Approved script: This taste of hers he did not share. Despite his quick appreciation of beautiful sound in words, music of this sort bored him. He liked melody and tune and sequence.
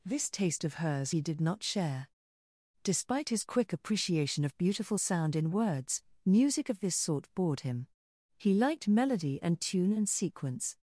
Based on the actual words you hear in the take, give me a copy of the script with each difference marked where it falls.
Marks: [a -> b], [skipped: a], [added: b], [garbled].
This taste of hers he did not share. Despite his quick appreciation of beautiful sound in words, music of this sort bored him. He liked melody and tune and sequence.